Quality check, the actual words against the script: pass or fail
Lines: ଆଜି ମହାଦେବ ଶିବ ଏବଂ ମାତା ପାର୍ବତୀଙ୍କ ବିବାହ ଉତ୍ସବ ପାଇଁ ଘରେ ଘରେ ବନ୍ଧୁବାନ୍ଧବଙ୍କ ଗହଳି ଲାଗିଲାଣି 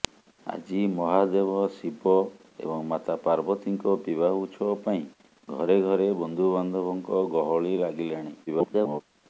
fail